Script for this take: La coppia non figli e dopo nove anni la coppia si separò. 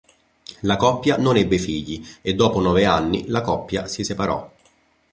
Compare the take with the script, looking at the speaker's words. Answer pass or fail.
fail